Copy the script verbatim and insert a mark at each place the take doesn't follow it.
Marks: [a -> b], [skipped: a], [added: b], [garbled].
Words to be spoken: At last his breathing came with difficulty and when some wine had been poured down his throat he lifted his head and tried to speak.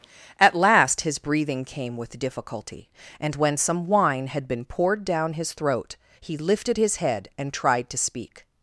At last his breathing came with difficulty and when some wine had been poured down his throat he lifted his head and tried to speak.